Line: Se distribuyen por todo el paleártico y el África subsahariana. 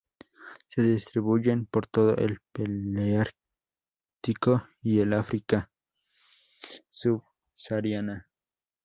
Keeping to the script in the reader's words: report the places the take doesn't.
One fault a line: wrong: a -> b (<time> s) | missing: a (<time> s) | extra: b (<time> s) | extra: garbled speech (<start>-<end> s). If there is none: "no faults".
no faults